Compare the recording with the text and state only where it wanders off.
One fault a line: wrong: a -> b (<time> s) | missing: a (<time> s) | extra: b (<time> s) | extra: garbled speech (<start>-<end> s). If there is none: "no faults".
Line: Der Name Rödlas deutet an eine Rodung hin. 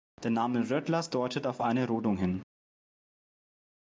wrong: an -> auf (1.5 s)